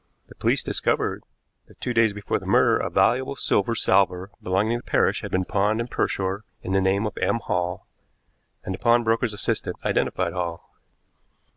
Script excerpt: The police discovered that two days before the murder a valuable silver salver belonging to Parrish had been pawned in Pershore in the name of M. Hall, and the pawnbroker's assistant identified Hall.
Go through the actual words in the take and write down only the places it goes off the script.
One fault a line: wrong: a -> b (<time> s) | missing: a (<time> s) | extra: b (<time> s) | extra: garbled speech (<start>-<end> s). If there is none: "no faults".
no faults